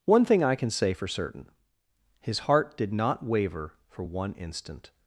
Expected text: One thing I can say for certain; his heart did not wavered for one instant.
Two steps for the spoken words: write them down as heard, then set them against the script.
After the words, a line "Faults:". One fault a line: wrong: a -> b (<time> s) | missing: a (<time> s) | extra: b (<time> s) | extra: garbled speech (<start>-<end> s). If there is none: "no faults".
One thing I can say for certain; his heart did not waver for one instant.
Faults:
wrong: wavered -> waver (3.2 s)